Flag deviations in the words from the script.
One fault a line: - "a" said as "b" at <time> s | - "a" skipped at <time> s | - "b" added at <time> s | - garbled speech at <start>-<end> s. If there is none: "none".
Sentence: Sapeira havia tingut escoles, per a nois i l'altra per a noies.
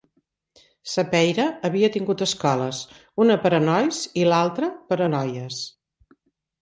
- "una" added at 3.2 s